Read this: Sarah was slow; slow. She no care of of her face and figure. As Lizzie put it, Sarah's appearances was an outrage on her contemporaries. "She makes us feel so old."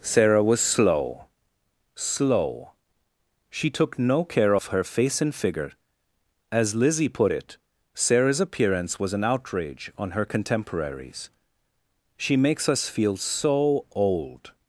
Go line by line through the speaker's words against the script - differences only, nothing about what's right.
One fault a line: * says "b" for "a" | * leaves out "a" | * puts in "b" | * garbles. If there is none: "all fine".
* puts in "took"
* leaves out "of"
* says "appearance" for "appearances"